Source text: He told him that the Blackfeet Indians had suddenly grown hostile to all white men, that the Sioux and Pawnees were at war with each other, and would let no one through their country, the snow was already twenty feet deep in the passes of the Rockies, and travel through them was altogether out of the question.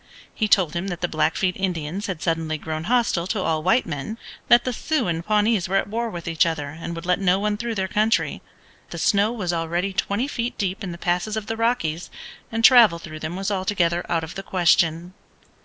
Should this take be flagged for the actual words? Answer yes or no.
no